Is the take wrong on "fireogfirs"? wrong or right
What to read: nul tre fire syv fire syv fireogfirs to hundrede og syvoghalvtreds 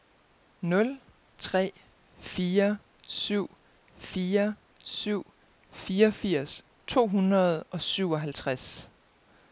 right